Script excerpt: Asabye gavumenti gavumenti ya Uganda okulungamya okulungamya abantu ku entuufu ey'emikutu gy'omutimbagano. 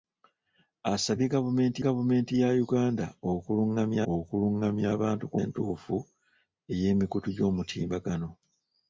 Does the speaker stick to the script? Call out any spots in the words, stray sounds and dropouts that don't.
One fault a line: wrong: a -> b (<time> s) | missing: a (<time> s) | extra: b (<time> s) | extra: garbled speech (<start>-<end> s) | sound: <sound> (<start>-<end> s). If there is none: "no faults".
no faults